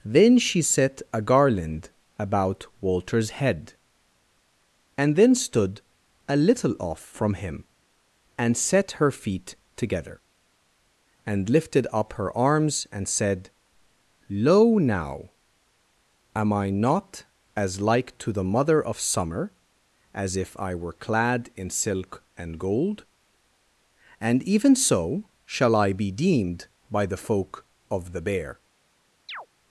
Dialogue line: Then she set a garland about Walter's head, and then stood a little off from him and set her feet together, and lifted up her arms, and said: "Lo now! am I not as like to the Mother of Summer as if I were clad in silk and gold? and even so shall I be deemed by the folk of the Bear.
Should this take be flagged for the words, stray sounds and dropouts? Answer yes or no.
yes